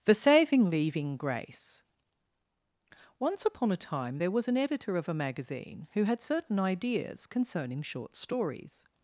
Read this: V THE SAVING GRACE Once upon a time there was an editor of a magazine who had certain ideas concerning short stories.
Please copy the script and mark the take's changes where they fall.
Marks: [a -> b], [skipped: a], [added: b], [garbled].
[skipped: V] THE SAVING [added: leaving] GRACE Once upon a time there was an editor of a magazine who had certain ideas concerning short stories.